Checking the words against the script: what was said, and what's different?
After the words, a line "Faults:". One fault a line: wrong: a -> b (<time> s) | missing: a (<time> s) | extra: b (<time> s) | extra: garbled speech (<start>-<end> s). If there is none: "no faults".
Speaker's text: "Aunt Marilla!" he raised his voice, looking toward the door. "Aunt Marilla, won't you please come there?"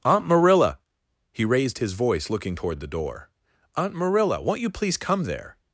"Aunt Marilla!" he raised his voice, looking toward the door. "Aunt Marilla, won't you please come there?"
Faults:
no faults